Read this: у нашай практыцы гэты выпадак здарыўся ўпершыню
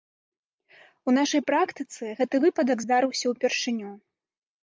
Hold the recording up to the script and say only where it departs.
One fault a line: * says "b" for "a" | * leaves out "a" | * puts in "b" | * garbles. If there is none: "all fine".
all fine